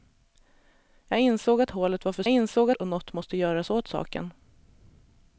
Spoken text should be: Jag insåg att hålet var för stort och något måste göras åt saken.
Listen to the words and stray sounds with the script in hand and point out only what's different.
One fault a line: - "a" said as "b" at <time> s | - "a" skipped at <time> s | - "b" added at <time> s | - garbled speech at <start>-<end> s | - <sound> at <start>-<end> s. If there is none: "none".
- "stort" said as "insåg" at 2.3 s